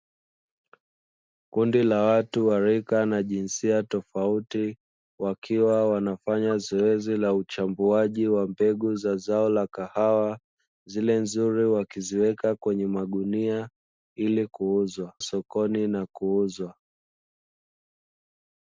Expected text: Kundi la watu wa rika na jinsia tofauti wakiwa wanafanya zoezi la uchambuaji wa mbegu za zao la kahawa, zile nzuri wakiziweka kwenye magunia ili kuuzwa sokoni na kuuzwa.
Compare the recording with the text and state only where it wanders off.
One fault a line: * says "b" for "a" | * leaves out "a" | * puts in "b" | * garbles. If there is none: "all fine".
all fine